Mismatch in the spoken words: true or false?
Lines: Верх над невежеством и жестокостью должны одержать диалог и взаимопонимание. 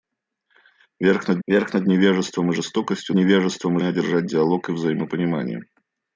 true